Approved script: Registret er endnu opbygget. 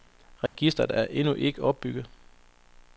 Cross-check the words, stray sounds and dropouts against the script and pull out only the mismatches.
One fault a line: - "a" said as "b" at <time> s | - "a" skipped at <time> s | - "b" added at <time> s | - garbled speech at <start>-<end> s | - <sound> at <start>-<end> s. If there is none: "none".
- dropout at 0.5-0.6 s
- "ikke" added at 1.3 s